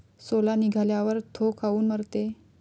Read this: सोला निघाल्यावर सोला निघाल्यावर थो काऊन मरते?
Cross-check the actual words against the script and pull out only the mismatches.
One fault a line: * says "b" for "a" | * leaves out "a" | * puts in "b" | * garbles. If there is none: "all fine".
* leaves out "सोला निघाल्यावर"